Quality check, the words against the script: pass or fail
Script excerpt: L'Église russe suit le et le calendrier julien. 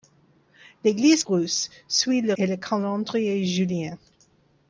pass